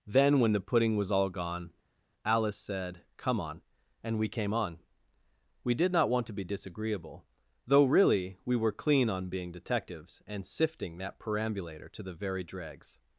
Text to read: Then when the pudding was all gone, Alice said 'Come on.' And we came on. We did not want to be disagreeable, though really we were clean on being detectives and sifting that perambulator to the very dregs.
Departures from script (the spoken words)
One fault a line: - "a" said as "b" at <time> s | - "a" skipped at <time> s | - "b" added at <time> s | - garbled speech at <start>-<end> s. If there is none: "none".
none